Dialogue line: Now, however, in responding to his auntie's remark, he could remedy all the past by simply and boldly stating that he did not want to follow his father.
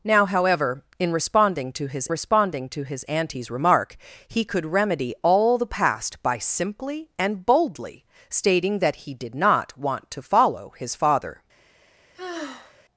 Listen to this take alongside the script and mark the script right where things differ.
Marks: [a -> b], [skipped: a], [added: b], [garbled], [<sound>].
Now, however, in responding to his [added: responding to his] auntie's remark, he could remedy all the past by simply and boldly stating that he did not want to follow his father. [sigh]